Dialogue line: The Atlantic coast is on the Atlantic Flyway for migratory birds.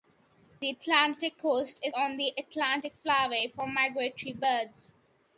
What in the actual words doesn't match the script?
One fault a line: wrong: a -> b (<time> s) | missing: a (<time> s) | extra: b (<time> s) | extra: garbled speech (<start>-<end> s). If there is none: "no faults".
no faults